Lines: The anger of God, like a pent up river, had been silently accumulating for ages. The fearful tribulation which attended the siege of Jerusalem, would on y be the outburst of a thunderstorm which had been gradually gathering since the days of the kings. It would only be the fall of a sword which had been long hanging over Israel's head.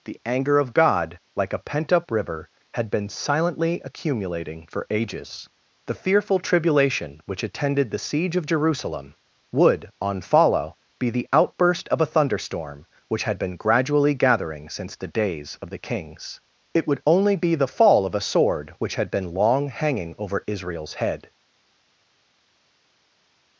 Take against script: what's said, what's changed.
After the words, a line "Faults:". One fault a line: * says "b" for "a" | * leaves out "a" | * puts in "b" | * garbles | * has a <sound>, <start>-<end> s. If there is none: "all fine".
The anger of God, like a pent up river, had been silently accumulating for ages. The fearful tribulation which attended the siege of Jerusalem, would on follow be the outburst of a thunderstorm which had been gradually gathering since the days of the kings. It would only be the fall of a sword which had been long hanging over Israel's head.
Faults:
* says "follow" for "y"